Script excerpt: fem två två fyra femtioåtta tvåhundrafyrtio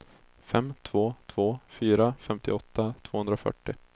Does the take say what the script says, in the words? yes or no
yes